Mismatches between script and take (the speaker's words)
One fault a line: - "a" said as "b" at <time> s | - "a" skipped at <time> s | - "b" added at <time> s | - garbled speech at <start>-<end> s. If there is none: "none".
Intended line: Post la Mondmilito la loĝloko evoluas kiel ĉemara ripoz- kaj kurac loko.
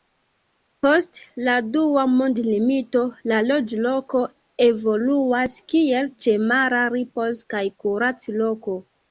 - "Dua" added at 1.8 s